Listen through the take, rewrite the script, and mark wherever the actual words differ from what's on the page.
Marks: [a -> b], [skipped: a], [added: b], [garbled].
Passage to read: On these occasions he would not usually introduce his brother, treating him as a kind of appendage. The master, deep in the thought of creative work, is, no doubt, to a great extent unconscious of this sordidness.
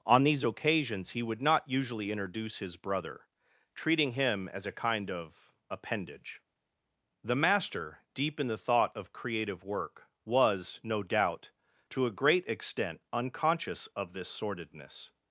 On these occasions he would not usually introduce his brother, treating him as a kind of appendage. The master, deep in the thought of creative work, [is, -> was] no doubt, to a great extent unconscious of this sordidness.